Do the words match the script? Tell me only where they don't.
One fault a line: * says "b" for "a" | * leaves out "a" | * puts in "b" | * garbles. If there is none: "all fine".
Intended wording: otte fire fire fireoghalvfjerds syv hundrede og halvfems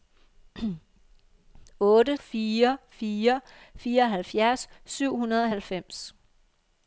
all fine